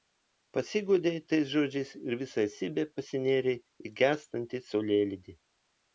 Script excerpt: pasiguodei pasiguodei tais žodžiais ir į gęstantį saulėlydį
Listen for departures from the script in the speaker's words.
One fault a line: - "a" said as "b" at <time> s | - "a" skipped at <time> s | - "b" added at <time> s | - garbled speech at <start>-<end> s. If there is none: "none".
- "pasiguodei" skipped at 1.2 s
- "visa esybe pasinėrei" added at 2.2 s